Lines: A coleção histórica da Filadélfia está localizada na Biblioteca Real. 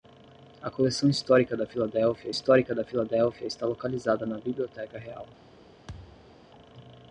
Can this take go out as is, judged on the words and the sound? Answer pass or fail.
fail